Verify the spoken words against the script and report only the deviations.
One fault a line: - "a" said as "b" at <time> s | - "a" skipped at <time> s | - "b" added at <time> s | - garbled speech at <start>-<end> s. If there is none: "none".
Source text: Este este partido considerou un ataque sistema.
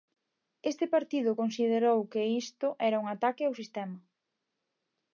- "este" skipped at 0.8 s
- "que isto era" added at 2.1 s
- "ao" added at 3.4 s